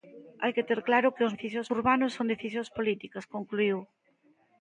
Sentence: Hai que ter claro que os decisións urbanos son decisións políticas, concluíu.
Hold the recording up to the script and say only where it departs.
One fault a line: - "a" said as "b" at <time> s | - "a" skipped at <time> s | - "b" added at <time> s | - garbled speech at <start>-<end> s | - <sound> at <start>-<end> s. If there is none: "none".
none